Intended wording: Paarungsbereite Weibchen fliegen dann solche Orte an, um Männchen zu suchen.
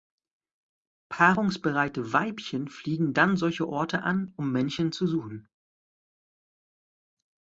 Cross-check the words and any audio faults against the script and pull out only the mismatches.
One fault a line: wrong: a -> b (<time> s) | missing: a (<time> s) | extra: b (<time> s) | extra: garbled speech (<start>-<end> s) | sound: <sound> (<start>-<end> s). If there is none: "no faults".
no faults